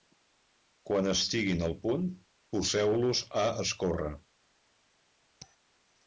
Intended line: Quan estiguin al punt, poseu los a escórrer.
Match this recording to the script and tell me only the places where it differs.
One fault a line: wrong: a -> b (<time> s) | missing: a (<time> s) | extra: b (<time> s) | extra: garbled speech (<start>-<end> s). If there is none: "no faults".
no faults